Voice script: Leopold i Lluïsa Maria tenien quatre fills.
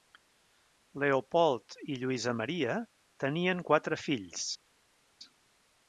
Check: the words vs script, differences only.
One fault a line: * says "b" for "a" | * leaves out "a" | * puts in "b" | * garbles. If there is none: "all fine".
all fine